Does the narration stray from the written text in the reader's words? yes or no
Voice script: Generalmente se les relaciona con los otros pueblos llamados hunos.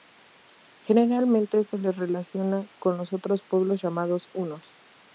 no